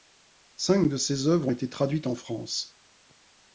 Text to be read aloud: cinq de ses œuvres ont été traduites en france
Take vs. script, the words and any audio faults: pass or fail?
pass